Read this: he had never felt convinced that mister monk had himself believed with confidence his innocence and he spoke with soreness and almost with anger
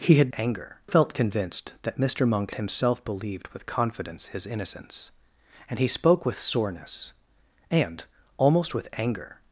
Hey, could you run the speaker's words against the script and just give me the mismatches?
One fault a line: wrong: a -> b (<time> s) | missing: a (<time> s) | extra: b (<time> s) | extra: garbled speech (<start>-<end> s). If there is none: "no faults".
wrong: never -> anger (0.3 s)
missing: had (2.5 s)